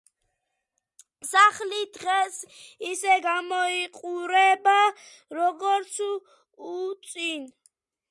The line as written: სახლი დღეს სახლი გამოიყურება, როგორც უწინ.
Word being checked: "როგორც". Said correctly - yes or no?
yes